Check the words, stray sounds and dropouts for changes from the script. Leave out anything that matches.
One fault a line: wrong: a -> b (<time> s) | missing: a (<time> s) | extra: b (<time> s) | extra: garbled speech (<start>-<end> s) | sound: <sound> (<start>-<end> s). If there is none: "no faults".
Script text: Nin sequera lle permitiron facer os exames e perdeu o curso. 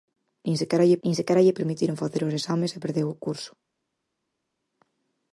extra: nin sequera lle (1.0 s)